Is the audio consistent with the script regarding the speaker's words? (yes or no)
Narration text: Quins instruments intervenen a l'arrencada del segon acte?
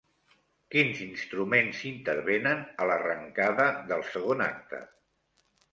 yes